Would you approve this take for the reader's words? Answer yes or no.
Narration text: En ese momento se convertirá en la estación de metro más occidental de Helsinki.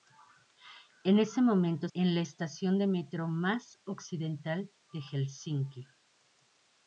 no